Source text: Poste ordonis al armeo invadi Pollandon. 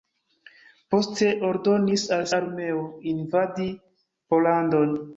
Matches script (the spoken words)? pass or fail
pass